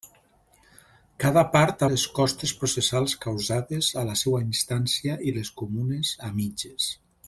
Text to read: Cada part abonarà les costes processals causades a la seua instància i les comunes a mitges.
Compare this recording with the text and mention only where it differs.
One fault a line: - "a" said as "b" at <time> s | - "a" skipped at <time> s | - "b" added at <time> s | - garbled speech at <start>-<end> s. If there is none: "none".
- "abonarà" skipped at 1.8 s